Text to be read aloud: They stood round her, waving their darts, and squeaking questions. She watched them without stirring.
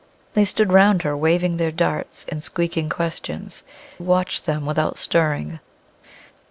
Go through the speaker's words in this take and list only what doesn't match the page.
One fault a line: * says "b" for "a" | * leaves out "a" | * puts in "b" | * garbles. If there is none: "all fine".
* leaves out "She"